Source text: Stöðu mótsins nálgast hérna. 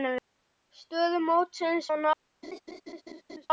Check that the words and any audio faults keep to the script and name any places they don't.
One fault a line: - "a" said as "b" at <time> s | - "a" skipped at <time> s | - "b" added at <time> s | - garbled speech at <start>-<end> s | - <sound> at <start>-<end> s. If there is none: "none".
- laugh at 2.4-3.5 s